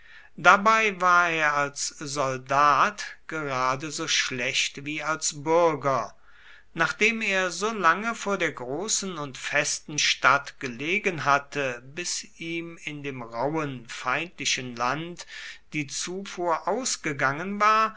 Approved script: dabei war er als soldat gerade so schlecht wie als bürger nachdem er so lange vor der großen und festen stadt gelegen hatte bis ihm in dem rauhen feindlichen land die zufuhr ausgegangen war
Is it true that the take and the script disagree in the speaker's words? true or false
false